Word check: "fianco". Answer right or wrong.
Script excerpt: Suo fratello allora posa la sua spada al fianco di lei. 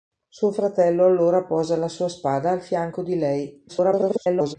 right